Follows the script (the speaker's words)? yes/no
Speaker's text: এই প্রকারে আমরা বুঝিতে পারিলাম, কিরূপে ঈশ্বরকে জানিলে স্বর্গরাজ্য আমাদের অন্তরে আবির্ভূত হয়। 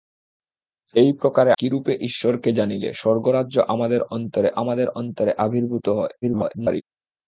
no